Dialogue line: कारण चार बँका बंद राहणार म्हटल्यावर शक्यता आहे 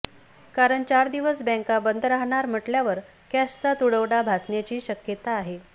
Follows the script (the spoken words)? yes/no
no